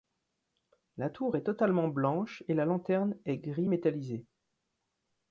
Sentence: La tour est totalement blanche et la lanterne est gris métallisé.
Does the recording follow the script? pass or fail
pass